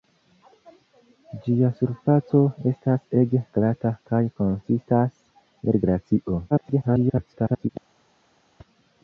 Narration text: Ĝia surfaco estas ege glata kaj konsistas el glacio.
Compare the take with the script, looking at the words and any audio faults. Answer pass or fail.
fail